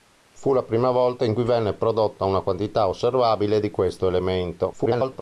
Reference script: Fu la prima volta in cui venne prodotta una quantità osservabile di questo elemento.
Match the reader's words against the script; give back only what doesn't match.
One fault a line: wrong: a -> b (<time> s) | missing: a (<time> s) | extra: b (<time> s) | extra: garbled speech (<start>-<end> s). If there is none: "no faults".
extra: garbled speech (4.7-5.2 s)